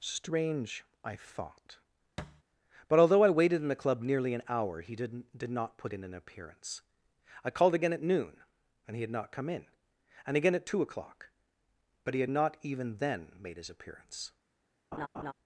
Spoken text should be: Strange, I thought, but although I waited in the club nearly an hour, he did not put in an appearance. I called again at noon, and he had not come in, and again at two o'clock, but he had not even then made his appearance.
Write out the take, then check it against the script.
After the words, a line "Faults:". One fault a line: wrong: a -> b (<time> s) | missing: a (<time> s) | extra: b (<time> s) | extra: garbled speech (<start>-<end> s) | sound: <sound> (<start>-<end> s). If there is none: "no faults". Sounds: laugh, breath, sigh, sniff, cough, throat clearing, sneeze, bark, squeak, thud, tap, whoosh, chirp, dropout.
Strange, I thought, but although I waited in the club nearly an hour, he did did not put in an appearance. I called again at noon, and he had not come in, and again at two o'clock, but he had not even then made his appearance.
Faults:
sound: thud (2.2-2.4 s)
extra: did (5.4 s)
sound: laugh (14.9-15.3 s)